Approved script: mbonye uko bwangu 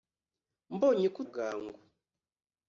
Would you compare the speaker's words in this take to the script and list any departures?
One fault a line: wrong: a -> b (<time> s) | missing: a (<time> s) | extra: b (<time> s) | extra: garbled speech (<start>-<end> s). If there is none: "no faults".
no faults